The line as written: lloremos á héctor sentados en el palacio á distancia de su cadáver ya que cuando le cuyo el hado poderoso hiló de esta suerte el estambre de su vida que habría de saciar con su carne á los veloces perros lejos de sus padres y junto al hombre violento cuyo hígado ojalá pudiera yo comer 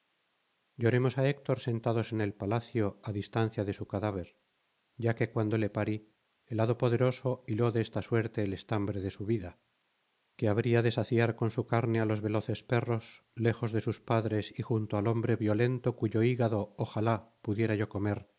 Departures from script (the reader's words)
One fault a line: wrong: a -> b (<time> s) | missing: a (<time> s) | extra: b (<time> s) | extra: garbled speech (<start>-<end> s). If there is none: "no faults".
wrong: cuyo -> parí (5.7 s)